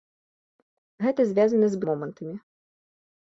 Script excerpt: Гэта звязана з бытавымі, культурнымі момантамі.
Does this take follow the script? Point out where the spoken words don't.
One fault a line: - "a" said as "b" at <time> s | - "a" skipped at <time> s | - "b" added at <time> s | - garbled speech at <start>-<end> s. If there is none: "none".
- "бытавымі культурнымі" skipped at 1.8 s